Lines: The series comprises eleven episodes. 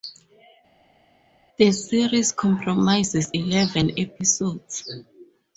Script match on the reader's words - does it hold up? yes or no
yes